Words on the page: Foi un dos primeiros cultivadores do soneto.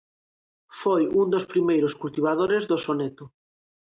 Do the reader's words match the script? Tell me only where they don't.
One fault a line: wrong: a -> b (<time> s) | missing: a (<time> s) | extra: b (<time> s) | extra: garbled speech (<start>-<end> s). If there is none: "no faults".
no faults